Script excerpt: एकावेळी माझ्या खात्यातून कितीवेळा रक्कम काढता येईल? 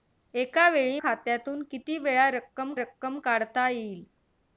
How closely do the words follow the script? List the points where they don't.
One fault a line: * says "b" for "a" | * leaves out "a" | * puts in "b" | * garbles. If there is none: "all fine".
* leaves out "माझ्या"
* puts in "रक्कम"